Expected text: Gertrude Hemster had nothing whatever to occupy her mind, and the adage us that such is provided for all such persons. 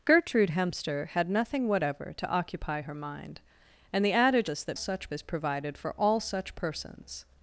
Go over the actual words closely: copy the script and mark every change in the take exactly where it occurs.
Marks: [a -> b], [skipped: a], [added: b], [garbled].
Gertrude Hemster had nothing whatever to occupy her mind, and the adage us that such is provided for all such persons.